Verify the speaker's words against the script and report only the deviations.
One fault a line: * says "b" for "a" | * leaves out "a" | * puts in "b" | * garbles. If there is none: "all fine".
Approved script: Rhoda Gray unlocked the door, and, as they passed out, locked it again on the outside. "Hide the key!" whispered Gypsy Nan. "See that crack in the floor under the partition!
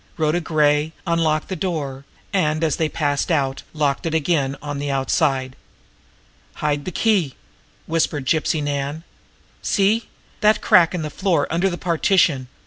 all fine